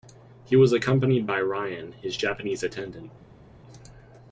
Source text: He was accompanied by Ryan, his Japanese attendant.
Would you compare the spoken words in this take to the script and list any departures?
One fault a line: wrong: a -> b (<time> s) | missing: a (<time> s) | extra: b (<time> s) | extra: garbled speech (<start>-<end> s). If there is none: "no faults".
no faults